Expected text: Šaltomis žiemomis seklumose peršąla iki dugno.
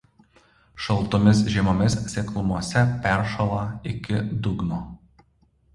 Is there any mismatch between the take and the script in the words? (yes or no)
no